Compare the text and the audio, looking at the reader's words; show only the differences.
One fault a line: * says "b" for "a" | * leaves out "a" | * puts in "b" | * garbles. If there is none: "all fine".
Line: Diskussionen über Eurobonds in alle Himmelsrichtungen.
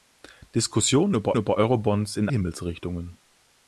* puts in "über"
* leaves out "alle"